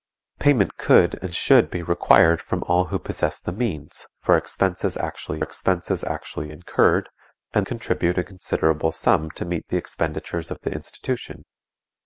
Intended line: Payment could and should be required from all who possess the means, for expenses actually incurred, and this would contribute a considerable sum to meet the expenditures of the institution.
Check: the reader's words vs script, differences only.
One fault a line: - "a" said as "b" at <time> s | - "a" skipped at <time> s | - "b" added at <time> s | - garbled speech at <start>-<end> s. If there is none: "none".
- "expenses actually" added at 5.4 s
- "this would" skipped at 7.7 s